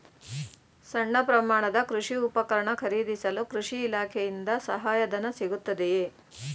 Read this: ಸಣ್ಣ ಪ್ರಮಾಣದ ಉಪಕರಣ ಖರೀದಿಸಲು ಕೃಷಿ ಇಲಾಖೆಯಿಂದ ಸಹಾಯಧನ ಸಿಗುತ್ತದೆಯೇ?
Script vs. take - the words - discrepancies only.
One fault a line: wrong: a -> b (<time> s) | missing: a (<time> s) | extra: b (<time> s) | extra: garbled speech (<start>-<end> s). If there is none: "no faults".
extra: ಕೃಷಿ (1.9 s)